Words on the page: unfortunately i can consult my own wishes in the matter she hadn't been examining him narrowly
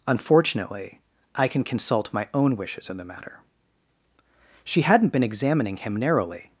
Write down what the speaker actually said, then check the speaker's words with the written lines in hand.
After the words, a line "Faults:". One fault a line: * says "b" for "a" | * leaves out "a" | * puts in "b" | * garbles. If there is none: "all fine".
unfortunately i can consult my own wishes in the matter she hadn't been examining him narrowly
Faults:
all fine